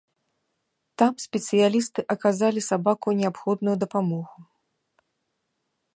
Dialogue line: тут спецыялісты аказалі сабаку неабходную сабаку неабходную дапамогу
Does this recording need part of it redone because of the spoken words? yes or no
yes